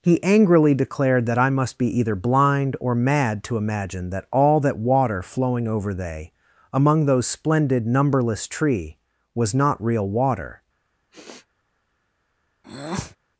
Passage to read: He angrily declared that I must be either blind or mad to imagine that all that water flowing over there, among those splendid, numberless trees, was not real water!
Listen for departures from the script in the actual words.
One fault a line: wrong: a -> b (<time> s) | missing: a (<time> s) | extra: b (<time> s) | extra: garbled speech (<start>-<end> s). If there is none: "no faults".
wrong: there -> they (5.9 s)
wrong: trees -> tree (8.5 s)